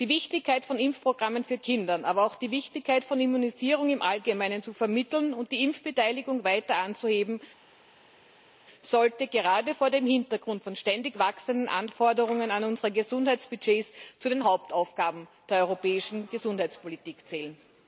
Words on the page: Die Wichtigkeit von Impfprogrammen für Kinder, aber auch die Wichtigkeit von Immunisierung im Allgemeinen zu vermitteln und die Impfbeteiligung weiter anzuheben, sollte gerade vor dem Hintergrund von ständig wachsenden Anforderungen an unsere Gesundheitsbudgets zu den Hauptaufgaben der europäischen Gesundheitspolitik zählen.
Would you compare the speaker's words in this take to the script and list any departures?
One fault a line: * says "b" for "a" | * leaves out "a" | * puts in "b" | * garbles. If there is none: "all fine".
all fine